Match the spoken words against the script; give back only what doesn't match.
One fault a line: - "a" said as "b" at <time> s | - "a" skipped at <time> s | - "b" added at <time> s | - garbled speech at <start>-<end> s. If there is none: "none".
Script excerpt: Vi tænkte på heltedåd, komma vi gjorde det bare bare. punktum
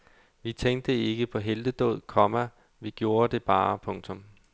- "ikke" added at 0.9 s
- "bare" skipped at 3.8 s